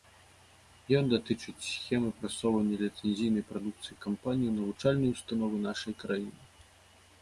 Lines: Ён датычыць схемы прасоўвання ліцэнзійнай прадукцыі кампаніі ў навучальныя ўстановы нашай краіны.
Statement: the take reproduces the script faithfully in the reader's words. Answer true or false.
true